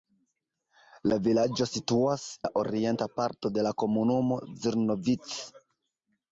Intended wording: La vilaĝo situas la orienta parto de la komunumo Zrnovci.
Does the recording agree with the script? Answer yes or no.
yes